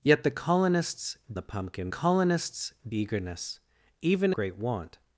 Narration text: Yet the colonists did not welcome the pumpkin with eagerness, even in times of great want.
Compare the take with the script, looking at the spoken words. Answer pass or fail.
fail